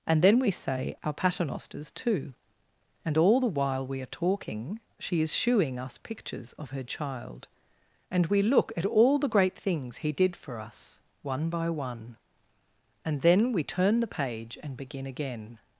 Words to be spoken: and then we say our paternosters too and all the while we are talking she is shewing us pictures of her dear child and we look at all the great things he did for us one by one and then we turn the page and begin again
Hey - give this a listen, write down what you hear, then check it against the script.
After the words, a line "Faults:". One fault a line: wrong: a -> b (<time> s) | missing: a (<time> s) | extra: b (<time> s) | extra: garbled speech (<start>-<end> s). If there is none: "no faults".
and then we say our paternosters too and all the while we are talking she is shewing us pictures of her child and we look at all the great things he did for us one by one and then we turn the page and begin again
Faults:
missing: dear (6.8 s)